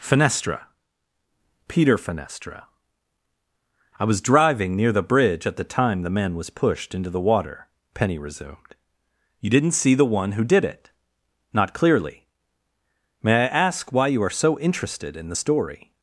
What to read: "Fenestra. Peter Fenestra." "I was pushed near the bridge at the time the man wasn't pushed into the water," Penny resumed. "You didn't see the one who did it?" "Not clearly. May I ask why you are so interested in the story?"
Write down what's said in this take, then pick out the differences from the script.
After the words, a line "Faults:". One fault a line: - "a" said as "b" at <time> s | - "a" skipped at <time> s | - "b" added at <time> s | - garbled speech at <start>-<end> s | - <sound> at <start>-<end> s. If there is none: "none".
"Fenestra. Peter Fenestra." "I was driving near the bridge at the time the man was pushed into the water," Penny resumed. "You didn't see the one who did it?" "Not clearly. May I ask why you are so interested in the story?"
Faults:
- "pushed" said as "driving" at 4.2 s
- "wasn't" said as "was" at 6.3 s